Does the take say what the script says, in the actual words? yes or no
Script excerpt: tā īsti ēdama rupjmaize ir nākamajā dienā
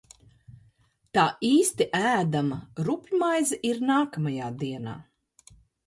yes